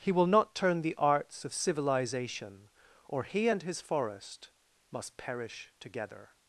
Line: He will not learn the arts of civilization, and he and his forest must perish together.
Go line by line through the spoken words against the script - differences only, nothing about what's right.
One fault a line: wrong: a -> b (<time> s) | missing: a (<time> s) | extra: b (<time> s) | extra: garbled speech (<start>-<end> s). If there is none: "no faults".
wrong: learn -> turn (0.6 s)
wrong: and -> or (3.1 s)